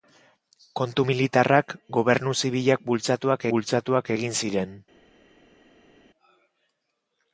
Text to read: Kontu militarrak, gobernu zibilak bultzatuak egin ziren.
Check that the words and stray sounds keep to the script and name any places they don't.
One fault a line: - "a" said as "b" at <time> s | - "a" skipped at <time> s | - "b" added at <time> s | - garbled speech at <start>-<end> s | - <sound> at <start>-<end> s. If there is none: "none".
- "bultzatuak" added at 3.6 s